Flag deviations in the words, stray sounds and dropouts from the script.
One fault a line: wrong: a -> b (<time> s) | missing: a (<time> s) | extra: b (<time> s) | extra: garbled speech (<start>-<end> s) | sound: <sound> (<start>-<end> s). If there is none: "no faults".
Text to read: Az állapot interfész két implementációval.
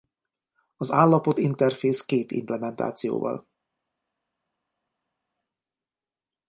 no faults